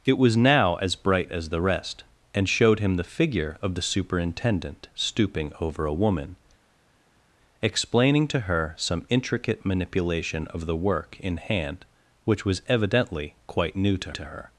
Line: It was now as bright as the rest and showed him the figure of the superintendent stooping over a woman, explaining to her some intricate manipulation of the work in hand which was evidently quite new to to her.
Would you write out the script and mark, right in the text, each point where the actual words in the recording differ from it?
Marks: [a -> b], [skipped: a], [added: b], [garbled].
It was now as bright as the rest and showed him the figure of the superintendent stooping over a woman, explaining to her some intricate manipulation of the work in hand which was evidently quite new to to her.